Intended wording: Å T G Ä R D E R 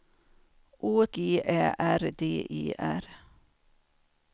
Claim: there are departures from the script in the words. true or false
true